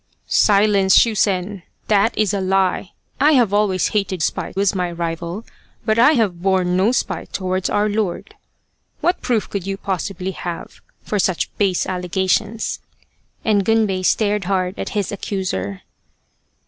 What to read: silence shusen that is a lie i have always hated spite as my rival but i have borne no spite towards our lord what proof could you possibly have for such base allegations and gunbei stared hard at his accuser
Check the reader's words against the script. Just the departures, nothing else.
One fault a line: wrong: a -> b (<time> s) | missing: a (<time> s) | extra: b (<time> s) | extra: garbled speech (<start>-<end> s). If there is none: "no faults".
no faults